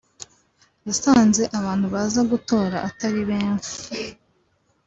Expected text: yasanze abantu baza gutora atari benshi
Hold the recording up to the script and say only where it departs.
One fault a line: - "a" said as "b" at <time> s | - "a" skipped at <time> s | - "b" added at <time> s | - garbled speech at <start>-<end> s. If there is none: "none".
none